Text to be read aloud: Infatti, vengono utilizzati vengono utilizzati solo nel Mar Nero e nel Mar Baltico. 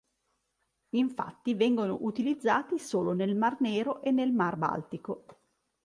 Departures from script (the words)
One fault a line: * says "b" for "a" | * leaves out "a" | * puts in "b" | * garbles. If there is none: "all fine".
* leaves out "vengono utilizzati"